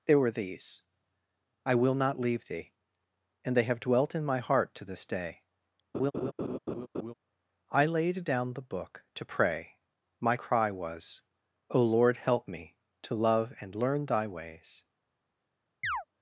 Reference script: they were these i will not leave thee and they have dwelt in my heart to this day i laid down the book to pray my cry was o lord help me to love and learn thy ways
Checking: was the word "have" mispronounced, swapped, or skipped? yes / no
no